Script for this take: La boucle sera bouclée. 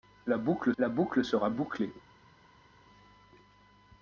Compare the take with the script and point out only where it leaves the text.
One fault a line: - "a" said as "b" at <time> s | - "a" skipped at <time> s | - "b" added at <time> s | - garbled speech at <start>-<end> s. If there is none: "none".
- "la boucle" added at 0.8 s